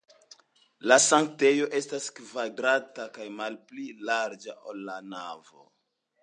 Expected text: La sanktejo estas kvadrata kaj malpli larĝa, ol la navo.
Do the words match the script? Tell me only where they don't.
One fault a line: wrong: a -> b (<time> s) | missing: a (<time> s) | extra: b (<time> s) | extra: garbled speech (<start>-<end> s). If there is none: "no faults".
no faults